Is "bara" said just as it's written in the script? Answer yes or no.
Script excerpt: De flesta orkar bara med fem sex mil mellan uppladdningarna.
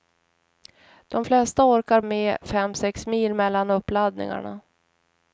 no